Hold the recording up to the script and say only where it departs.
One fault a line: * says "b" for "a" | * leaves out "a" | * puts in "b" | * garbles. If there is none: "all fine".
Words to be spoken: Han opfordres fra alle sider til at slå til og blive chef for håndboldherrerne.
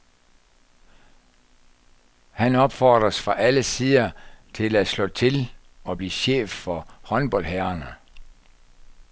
all fine